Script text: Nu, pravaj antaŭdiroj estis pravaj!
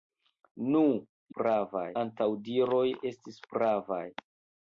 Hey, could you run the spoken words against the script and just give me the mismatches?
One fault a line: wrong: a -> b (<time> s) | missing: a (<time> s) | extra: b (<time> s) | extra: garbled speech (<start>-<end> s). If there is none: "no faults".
no faults